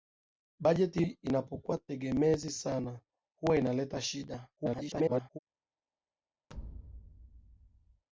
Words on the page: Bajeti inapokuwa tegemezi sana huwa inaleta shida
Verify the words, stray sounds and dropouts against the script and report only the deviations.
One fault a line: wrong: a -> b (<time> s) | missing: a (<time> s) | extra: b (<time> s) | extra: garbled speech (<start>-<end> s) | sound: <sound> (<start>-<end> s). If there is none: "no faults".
extra: garbled speech (4.6-5.4 s)
sound: thud (6.5-8.0 s)